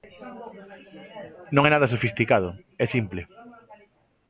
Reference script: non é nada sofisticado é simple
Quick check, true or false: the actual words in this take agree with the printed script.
true